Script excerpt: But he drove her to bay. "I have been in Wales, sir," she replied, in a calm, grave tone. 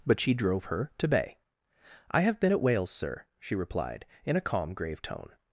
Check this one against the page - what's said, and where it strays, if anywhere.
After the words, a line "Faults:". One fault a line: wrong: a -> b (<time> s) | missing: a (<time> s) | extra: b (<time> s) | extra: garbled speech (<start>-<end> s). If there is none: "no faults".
But she drove her to bay. "I have been at Wales, sir," she replied, in a calm, grave tone.
Faults:
wrong: he -> she (0.2 s)
wrong: in -> at (2.5 s)